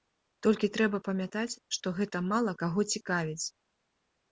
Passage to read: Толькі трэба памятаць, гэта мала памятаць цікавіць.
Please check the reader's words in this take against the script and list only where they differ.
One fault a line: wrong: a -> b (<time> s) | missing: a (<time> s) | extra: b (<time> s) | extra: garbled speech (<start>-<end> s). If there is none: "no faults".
extra: што (1.8 s)
wrong: памятаць -> каго (2.6 s)